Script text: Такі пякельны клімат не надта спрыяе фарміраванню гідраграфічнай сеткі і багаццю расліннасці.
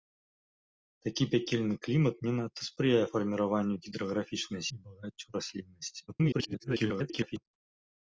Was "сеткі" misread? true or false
true